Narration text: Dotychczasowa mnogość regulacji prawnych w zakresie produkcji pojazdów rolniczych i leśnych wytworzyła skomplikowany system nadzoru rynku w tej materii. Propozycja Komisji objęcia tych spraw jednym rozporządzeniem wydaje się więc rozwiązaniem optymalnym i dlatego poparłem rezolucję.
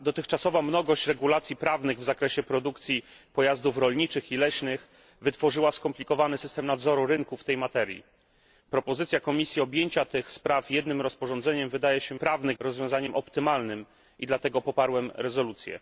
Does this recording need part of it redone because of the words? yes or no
yes